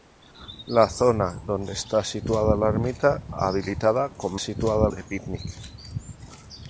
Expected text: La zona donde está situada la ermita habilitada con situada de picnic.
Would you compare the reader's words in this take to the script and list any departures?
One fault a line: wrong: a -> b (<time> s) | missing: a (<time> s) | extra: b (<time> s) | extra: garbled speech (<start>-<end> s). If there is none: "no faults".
no faults